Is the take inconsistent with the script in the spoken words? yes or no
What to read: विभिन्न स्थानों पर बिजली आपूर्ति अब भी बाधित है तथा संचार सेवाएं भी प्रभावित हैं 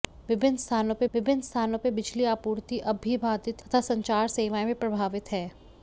yes